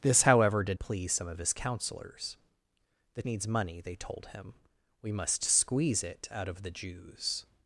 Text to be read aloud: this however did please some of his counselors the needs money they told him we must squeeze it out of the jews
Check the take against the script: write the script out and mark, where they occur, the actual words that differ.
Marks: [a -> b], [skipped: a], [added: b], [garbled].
this however did please some of his counselors the needs money they told him we must squeeze it out of the jews